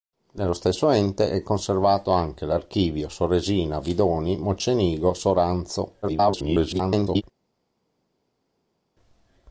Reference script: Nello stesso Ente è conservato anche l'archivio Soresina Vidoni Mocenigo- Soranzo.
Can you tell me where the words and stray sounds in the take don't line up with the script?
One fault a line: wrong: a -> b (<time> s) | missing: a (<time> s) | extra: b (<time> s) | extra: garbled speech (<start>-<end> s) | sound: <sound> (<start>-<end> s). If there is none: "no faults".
extra: garbled speech (6.0-7.2 s)